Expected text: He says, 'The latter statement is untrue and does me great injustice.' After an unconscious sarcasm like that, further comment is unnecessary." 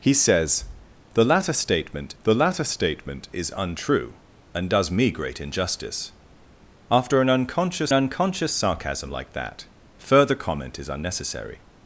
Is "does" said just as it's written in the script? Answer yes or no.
yes